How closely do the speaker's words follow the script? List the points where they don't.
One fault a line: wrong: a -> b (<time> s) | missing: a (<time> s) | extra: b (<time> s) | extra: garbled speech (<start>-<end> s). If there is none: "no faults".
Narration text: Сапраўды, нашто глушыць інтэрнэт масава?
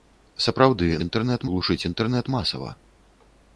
wrong: нашто -> інтэрнэт (1.1 s)